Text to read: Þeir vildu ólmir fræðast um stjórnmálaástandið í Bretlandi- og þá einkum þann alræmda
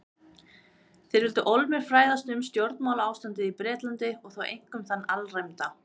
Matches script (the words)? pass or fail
pass